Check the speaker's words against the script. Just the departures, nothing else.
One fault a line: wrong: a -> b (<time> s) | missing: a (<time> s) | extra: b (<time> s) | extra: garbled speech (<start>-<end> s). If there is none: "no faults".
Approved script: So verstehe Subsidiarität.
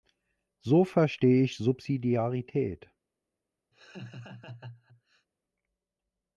extra: ich (1.4 s)